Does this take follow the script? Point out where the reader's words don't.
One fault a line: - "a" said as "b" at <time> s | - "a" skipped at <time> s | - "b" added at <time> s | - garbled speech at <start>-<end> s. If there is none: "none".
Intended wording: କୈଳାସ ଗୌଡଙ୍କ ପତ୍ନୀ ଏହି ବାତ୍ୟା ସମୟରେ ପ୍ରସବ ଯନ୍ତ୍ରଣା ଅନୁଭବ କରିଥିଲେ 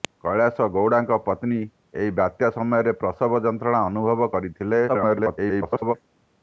- garbled speech at 4.9-5.9 s